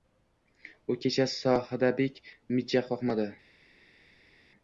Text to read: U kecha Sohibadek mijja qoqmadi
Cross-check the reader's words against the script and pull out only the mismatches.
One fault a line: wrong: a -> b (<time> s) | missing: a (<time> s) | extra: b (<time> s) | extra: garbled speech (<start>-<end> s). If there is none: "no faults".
no faults